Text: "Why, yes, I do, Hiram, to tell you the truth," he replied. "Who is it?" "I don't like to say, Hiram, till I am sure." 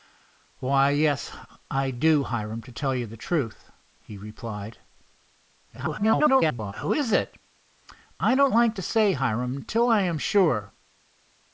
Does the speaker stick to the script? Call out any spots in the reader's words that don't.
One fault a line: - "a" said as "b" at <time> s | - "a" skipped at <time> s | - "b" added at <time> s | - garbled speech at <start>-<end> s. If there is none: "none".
- garbled speech at 5.8-6.7 s